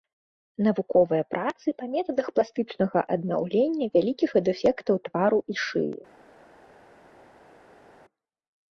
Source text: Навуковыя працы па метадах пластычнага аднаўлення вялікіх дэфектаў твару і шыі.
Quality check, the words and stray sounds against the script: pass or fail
pass